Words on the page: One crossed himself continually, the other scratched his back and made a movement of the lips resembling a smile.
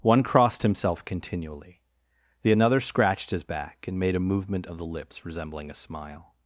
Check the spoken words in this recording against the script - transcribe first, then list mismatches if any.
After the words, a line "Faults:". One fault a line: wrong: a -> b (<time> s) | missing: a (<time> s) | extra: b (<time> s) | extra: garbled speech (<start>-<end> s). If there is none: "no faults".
One crossed himself continually, the another scratched his back and made a movement of the lips resembling a smile.
Faults:
wrong: other -> another (2.5 s)